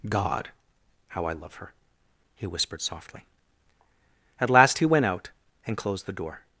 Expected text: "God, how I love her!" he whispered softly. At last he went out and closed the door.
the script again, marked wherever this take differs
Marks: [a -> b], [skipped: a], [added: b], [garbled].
"God, how I love her!" he whispered softly. At last he went out and closed the door.